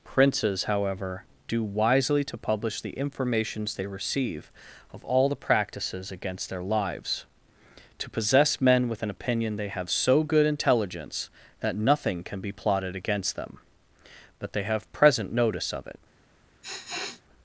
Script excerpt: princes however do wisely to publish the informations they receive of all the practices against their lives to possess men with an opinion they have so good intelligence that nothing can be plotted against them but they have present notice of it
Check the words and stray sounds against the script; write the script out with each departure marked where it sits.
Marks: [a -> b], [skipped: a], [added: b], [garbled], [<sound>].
princes however do wisely to publish the informations they receive of all the practices against their lives to possess men with an opinion they have so good intelligence that nothing can be plotted against them but they have present notice of it [sniff]